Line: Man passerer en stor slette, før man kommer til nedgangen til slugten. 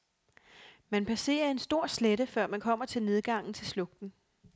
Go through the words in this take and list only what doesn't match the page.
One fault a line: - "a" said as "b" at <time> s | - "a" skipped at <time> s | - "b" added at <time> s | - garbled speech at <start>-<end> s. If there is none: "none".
none